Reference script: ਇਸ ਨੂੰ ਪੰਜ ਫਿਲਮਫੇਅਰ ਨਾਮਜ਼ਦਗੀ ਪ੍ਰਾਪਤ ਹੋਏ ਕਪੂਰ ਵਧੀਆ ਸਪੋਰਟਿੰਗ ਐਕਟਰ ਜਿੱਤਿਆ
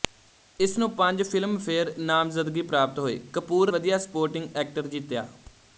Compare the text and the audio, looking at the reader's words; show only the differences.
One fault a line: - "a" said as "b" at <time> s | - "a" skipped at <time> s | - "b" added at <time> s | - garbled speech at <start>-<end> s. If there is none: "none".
none